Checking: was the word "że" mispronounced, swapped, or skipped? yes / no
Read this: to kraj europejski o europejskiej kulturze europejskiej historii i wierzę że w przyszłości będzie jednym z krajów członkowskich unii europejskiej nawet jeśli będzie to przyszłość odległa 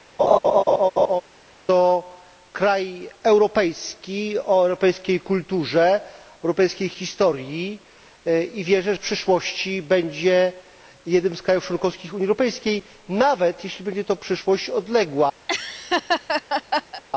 yes